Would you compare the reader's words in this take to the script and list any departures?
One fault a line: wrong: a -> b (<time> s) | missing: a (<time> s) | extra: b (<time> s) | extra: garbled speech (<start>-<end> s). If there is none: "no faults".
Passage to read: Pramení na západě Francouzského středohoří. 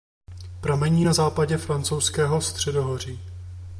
no faults